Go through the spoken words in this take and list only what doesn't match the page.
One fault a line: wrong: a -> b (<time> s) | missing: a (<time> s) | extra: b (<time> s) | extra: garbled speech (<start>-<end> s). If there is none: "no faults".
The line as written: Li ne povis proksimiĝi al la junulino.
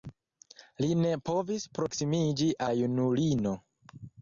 missing: al (2.5 s)